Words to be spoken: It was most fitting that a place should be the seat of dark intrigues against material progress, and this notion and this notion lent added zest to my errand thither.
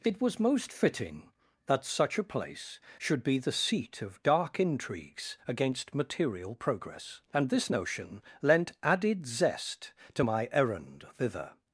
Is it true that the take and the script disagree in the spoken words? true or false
true